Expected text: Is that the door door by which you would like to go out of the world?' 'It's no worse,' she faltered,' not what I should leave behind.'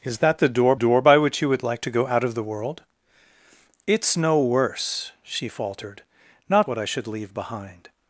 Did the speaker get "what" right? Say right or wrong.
right